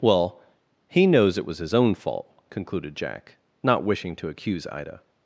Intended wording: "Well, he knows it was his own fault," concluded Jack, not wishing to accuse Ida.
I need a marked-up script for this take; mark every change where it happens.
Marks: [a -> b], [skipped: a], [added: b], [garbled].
"Well, he knows it was his own fault," concluded Jack, not wishing to accuse Ida.